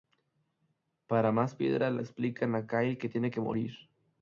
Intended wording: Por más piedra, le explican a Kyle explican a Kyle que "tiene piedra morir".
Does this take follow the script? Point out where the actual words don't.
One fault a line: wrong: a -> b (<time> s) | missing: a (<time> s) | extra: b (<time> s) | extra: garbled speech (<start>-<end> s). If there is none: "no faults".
wrong: Por -> Para (1.1 s)
missing: explican a Kyle (3.0 s)
wrong: piedra -> que (3.3 s)